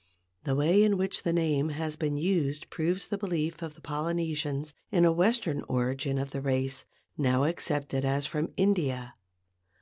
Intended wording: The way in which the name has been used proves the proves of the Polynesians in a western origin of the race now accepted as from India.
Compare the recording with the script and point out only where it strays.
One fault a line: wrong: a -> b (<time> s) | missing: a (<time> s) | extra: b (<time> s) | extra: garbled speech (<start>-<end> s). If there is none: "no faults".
wrong: proves -> belief (3.2 s)